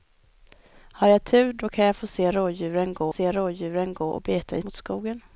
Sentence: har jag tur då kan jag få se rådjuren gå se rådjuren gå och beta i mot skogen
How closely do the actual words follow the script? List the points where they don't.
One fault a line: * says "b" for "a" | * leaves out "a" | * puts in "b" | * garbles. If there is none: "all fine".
all fine